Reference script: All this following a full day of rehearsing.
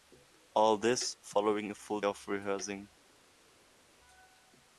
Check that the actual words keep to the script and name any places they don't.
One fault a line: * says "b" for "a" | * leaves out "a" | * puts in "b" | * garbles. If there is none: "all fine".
* leaves out "day"